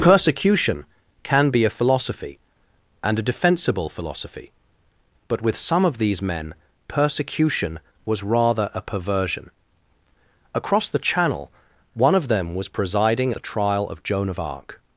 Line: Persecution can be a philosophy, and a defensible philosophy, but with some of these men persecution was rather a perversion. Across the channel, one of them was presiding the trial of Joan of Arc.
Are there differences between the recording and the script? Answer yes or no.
no